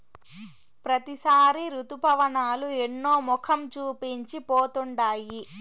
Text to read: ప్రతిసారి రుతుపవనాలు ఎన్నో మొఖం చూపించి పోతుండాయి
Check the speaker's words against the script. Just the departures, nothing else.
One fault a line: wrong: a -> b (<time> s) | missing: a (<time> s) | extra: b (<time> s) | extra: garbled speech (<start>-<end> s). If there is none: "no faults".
no faults